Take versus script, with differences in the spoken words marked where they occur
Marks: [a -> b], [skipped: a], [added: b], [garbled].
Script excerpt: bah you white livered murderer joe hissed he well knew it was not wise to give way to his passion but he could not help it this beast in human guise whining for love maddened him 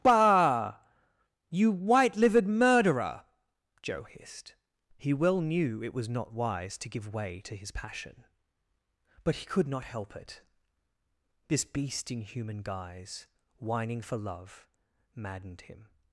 bah you white livered murderer joe hissed he well knew it was not wise to give way to his passion but he could not help it this beast in human guise whining for love maddened him